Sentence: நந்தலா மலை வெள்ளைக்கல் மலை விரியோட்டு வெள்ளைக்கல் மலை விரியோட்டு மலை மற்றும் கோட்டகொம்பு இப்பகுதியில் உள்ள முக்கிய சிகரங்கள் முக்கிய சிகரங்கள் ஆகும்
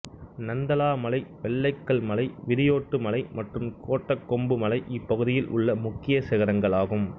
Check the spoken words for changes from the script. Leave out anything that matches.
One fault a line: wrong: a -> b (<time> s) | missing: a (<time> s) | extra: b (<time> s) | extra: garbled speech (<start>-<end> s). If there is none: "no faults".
missing: வெள்ளைக்கல் (3.0 s)
missing: விரியோட்டு மலை (3.2 s)
extra: மலை (4.6 s)
missing: முக்கிய சிகரங்கள் (6.8 s)